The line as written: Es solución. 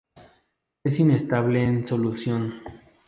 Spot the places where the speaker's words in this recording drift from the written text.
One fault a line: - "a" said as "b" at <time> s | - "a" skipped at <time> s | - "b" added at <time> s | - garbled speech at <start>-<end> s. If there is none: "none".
- "inestable en" added at 1.0 s